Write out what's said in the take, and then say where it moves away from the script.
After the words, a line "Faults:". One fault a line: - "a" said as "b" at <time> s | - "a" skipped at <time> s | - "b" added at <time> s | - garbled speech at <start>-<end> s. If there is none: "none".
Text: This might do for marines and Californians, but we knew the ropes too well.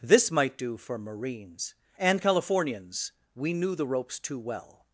This might do for marines and Californians, we knew the ropes too well.
Faults:
- "but" skipped at 3.1 s